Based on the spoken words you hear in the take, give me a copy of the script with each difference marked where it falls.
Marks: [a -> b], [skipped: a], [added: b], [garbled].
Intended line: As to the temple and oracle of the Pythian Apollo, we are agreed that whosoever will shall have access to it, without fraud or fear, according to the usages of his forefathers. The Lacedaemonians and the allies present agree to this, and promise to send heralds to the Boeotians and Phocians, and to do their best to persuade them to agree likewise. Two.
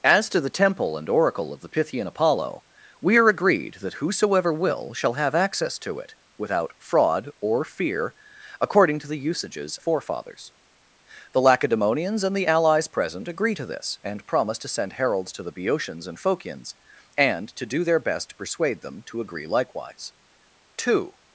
As to the temple and oracle of the Pythian Apollo, we are agreed that whosoever will shall have access to it, without fraud or fear, according to the usages [skipped: of his] forefathers. The Lacedaemonians and the allies present agree to this, and promise to send heralds to the Boeotians and Phocians, and to do their best to persuade them to agree likewise. Two.